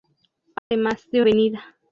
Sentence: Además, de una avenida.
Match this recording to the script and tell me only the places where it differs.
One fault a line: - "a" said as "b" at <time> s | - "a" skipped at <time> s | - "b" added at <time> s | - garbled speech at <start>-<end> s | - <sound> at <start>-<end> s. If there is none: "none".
- dropout at 0.6-0.7 s
- "una" skipped at 1.2 s